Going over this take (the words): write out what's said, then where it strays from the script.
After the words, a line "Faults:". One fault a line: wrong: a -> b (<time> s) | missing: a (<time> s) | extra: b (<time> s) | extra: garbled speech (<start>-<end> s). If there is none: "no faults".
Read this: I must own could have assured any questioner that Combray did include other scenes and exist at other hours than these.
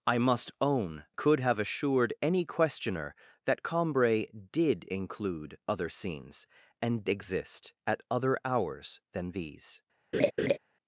I must own could have assured any questioner that Combray did include other scenes and exist at other hours than these.
Faults:
no faults